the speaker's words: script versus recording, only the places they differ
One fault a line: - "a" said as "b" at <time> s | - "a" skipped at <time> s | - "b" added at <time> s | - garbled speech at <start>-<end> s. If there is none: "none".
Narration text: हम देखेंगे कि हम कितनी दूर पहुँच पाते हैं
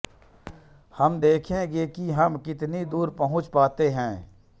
none